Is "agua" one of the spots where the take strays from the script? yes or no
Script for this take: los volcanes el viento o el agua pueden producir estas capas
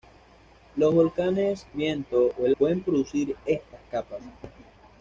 yes